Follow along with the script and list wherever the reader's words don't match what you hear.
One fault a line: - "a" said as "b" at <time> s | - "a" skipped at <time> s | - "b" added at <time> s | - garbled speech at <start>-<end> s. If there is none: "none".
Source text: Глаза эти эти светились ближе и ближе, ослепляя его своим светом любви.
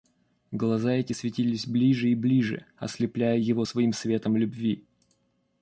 - "эти" skipped at 1.1 s